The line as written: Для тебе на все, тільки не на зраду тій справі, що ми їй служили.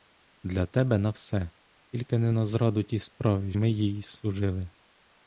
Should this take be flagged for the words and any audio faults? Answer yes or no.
yes